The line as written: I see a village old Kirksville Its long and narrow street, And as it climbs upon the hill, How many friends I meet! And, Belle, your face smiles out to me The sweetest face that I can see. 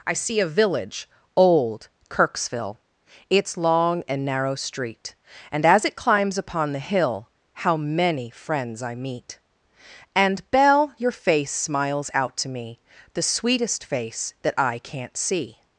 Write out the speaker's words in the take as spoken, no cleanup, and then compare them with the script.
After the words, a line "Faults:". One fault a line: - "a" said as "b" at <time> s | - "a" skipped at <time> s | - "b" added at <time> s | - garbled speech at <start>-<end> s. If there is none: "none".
I see a village old Kirksville Its long and narrow street, And as it climbs upon the hill, How many friends I meet! And, Belle, your face smiles out to me The sweetest face that I can't see.
Faults:
- "can" said as "can't" at 14.8 s